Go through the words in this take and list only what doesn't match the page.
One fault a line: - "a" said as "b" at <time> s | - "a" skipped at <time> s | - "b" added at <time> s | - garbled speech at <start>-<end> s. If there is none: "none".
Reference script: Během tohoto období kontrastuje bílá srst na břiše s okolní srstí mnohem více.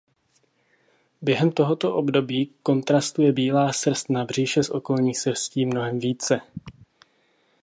none